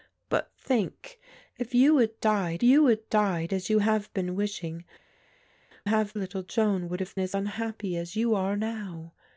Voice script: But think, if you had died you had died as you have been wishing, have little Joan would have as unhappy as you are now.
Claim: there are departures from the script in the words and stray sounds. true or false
false